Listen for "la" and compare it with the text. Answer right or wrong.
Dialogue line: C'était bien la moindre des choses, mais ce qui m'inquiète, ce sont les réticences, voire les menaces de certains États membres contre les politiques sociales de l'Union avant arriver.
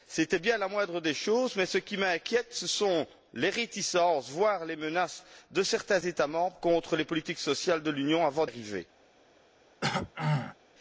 right